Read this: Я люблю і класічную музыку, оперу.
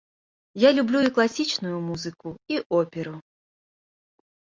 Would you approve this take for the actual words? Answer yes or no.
no